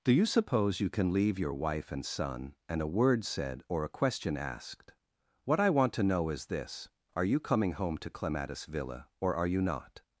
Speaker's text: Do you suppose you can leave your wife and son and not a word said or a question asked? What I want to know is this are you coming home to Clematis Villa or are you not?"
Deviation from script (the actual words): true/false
true